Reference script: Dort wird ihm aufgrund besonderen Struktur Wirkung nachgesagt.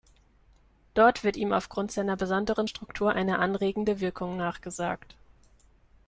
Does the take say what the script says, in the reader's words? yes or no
no